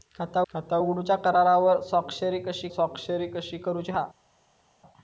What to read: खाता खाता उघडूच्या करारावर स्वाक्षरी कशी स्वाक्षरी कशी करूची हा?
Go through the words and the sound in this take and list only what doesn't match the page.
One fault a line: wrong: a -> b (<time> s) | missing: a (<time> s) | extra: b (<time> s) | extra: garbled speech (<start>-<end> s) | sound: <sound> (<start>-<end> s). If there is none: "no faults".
no faults